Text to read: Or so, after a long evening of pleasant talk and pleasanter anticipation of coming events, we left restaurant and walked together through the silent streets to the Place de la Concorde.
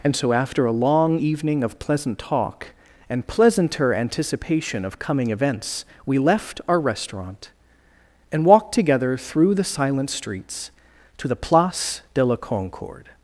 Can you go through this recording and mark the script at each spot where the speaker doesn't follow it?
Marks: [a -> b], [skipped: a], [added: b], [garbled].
[Or -> And] so, after a long evening of pleasant talk and pleasanter anticipation of coming events, we left [added: our] restaurant and walked together through the silent streets to the Place de la Concorde.